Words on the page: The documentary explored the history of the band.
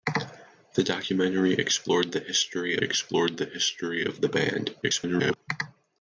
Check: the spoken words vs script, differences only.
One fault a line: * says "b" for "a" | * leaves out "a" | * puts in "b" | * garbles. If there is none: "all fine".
* puts in "explored the history"
* garbles